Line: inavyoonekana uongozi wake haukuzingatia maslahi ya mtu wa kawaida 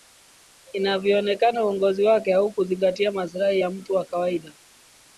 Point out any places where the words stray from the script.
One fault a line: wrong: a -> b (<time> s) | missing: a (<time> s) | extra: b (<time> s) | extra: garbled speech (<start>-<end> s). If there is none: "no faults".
no faults